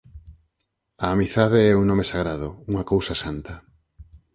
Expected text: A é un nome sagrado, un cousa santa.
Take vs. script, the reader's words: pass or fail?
fail